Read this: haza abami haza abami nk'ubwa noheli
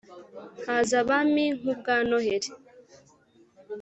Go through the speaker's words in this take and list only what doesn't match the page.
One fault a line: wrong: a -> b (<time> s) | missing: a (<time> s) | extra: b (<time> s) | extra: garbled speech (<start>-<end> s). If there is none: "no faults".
missing: haza abami (1.4 s)